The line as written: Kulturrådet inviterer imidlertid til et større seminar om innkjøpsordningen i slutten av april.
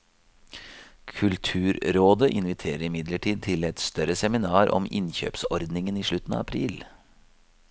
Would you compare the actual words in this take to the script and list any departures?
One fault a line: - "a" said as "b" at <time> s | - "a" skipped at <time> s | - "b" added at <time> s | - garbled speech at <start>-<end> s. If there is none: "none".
none